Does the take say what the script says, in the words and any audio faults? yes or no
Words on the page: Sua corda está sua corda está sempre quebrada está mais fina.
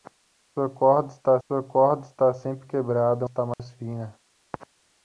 no